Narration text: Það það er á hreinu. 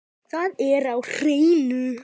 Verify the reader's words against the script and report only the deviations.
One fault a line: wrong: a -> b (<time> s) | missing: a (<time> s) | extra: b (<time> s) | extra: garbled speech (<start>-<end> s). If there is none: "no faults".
missing: það (0.5 s)